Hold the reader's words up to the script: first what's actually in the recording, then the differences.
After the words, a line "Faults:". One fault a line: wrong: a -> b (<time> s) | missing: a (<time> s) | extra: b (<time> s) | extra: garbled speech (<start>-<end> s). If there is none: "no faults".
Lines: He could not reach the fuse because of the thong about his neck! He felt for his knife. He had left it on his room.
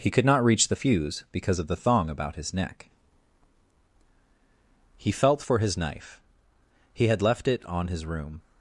He could not reach the fuse because of the thong about his neck! He felt for his knife. He had left it on his room.
Faults:
no faults